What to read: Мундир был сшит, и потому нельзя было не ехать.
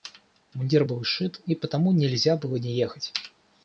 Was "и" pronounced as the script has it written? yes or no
yes